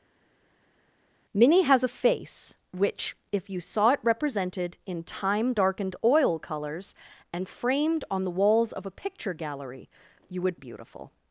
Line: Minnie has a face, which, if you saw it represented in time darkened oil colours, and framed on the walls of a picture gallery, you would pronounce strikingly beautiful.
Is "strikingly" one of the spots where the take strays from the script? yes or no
yes